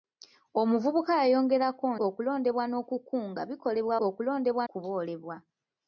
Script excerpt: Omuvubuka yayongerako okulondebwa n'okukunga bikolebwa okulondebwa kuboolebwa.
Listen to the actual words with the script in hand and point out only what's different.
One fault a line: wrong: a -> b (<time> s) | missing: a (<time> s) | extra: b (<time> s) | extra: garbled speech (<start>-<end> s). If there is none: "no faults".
no faults